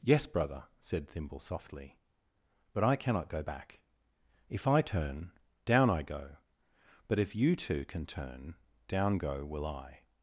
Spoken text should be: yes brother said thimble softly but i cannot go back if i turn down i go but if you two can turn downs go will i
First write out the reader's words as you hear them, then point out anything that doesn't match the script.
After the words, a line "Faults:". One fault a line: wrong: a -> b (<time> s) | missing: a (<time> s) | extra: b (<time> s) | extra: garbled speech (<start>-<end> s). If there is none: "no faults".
yes brother said thimble softly but i cannot go back if i turn down i go but if you two can turn down go will i
Faults:
wrong: downs -> down (8.9 s)